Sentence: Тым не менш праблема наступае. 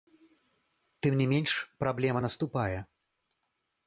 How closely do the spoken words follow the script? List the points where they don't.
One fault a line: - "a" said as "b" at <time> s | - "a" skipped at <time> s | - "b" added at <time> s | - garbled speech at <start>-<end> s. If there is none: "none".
none